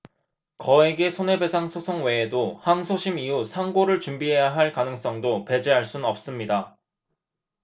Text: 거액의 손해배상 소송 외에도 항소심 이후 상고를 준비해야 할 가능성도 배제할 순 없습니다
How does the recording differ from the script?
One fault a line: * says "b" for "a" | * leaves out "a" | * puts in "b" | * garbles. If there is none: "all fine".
all fine